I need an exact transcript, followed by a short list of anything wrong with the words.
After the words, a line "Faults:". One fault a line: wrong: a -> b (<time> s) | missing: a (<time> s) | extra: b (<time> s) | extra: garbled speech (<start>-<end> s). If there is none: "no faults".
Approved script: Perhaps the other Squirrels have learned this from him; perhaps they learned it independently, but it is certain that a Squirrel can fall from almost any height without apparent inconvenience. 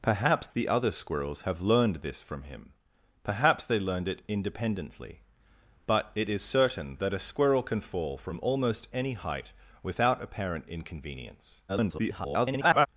Perhaps the other Squirrels have learned this from him; perhaps they learned it independently, but it is certain that a Squirrel can fall from almost any height without apparent inconvenience. [garbled]
Faults:
extra: garbled speech (11.7-12.9 s)